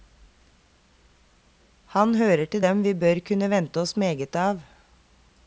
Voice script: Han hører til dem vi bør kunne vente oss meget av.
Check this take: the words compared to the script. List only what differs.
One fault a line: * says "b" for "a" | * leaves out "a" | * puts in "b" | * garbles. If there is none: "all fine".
all fine